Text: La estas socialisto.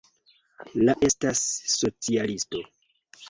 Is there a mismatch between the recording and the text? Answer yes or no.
no